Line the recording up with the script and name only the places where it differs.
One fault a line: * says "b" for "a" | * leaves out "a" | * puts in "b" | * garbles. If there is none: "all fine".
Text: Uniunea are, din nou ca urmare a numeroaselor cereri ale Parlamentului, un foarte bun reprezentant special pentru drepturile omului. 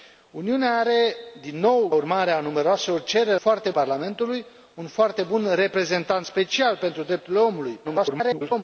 * leaves out "ca"
* says "foarte" for "ale"
* garbles